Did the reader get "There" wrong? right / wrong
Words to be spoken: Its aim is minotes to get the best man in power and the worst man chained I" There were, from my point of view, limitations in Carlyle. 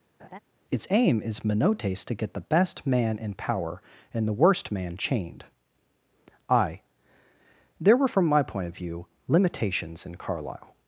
right